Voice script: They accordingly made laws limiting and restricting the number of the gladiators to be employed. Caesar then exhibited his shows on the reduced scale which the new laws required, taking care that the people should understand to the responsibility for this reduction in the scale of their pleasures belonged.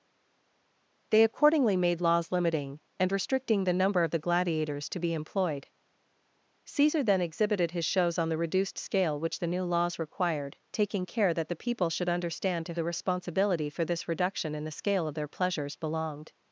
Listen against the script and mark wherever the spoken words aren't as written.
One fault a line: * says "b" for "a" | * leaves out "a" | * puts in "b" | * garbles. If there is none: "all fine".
all fine